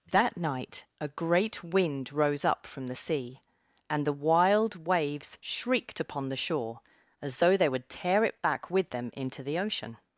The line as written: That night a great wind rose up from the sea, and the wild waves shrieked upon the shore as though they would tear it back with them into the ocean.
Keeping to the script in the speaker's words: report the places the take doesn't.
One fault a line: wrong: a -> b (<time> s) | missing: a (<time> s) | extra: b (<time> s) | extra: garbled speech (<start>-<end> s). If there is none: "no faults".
no faults